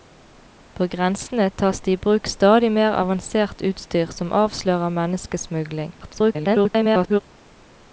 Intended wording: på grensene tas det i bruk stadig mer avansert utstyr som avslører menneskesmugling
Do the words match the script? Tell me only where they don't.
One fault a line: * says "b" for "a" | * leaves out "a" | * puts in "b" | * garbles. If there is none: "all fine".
* garbles